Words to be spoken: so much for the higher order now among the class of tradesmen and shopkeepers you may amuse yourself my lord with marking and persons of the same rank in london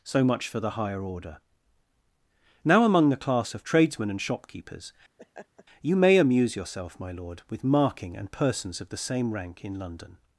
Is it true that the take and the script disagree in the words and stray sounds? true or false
true